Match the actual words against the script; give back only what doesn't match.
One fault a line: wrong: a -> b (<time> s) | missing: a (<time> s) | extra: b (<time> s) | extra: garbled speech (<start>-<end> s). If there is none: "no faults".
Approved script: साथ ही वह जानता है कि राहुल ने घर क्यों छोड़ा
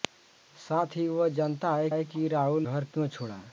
extra: है (1.9 s)
missing: ने (2.6 s)